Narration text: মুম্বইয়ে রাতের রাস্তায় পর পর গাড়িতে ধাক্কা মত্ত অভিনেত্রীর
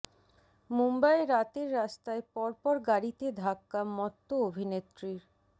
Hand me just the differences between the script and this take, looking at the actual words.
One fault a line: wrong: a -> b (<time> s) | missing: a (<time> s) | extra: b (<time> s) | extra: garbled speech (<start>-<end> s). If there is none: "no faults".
no faults